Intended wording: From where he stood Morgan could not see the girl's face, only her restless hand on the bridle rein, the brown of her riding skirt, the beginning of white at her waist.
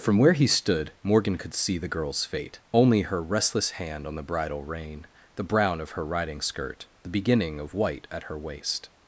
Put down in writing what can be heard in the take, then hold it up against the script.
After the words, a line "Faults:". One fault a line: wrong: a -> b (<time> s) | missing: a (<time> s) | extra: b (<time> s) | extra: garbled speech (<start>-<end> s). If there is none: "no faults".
From where he stood Morgan could see the girl's fate, only her restless hand on the bridle rein, the brown of her riding skirt, the beginning of white at her waist.
Faults:
missing: not (1.5 s)
wrong: face -> fate (2.2 s)